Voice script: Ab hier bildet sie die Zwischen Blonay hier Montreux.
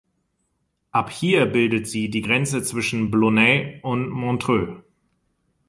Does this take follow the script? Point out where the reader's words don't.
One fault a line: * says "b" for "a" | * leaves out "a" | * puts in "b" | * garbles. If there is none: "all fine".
* puts in "Grenze"
* says "und" for "hier"